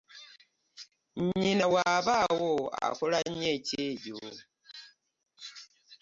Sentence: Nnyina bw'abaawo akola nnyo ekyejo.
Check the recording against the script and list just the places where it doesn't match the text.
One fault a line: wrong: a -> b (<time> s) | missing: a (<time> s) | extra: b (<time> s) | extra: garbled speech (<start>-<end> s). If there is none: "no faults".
no faults